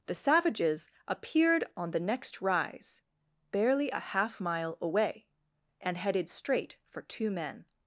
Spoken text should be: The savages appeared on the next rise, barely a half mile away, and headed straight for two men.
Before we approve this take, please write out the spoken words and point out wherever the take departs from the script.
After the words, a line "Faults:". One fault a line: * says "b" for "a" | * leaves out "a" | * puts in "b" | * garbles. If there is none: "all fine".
The savages appeared on the next rise, barely a half mile away, and headed straight for two men.
Faults:
all fine